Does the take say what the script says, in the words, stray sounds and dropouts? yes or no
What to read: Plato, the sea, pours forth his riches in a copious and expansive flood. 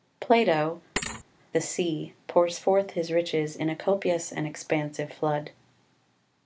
no